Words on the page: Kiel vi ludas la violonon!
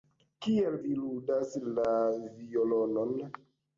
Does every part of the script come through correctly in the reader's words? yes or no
yes